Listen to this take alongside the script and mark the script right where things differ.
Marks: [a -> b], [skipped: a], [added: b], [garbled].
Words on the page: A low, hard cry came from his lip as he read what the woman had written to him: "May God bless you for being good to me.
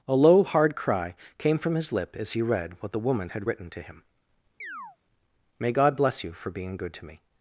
A low, hard cry came from his lip as he read what the woman had written to him: "May God bless you for being good to me.